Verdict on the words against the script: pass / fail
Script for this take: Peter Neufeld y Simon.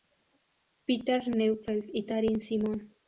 fail